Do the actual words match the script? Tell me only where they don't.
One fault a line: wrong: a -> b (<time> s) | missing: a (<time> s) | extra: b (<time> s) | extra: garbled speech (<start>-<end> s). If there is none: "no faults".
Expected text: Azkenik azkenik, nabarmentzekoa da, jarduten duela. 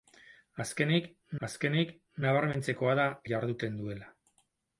no faults